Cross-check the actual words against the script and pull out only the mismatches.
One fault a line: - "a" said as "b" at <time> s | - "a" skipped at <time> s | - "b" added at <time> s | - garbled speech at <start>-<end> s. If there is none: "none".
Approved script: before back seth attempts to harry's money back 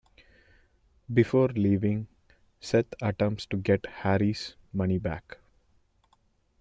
- "back" said as "leaving" at 1.5 s
- "get" added at 3.6 s